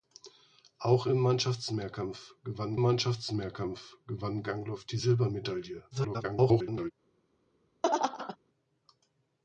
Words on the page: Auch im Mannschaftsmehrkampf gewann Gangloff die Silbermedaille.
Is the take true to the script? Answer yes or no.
no